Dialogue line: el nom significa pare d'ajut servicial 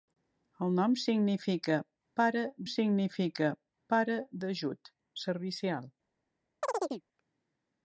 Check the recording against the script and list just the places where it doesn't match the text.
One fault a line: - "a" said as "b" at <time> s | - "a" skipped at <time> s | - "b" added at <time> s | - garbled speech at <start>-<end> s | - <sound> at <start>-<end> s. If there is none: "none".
- "significa pare" added at 2.7 s
- chirp at 6.6-7.0 s